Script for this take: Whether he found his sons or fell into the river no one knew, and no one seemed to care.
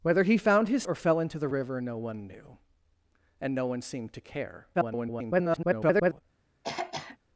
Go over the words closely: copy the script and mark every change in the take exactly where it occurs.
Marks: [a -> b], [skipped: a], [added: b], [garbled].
Whether he found his [skipped: sons] or fell into the river no one knew, and no one seemed to care. [garbled]